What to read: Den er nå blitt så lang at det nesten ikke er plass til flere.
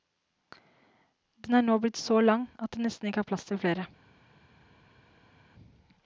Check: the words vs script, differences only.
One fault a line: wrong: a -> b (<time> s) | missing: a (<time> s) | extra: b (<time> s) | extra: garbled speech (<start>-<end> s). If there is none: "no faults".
no faults